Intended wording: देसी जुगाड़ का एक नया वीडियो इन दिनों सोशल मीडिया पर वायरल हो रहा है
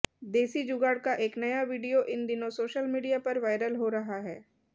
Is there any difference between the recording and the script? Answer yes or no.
no